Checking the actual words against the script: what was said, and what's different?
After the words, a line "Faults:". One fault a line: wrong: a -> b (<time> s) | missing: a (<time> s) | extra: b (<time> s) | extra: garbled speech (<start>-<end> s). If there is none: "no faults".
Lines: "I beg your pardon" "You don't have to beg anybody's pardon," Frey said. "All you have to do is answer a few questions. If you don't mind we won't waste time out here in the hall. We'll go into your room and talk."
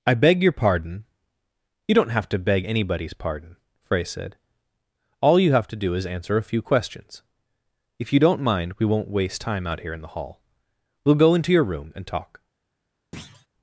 "I beg your pardon" "You don't have to beg anybody's pardon," Frey said. "All you have to do is answer a few questions. If you don't mind we won't waste time out here in the hall. We'll go into your room and talk."
Faults:
no faults